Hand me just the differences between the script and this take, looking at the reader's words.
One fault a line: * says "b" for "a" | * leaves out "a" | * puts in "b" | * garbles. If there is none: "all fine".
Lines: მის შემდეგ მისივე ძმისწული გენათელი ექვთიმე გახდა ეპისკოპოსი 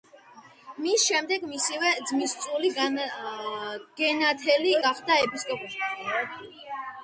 * leaves out "ექვთიმე"